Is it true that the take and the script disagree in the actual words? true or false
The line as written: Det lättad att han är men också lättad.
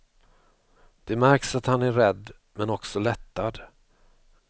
true